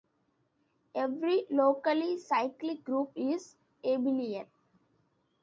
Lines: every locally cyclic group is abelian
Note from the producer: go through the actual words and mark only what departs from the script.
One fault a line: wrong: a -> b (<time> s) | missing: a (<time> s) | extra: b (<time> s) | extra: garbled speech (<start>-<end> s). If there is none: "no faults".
no faults